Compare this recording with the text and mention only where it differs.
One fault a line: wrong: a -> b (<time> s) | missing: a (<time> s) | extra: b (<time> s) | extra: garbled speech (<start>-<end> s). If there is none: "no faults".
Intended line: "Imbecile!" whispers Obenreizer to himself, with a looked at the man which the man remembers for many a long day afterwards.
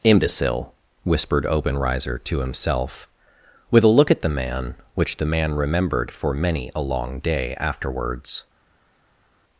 wrong: whispers -> whispered (1.0 s)
wrong: looked -> look (3.9 s)
wrong: remembers -> remembered (5.5 s)